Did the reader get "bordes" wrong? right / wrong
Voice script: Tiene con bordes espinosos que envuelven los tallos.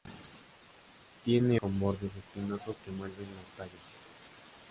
right